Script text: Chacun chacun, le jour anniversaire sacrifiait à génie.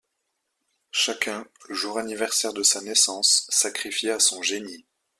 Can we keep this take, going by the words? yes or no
no